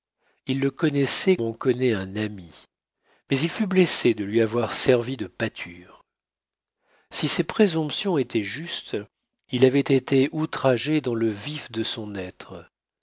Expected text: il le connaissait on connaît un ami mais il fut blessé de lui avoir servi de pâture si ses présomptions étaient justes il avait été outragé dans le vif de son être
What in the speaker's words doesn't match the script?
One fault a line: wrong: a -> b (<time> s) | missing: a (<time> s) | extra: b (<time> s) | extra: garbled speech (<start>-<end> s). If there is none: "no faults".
no faults